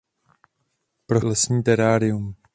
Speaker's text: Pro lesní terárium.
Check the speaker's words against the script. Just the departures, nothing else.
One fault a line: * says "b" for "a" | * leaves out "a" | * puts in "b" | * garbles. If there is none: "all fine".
all fine